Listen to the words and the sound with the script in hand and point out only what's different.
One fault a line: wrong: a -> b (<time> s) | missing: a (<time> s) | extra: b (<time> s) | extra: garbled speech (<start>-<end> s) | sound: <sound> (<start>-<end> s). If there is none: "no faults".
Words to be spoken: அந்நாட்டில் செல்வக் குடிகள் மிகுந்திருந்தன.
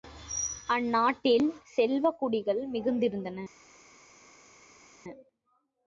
no faults